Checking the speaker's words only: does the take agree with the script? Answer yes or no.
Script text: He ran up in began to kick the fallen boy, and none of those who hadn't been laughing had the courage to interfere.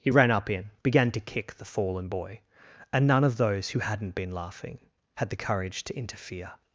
yes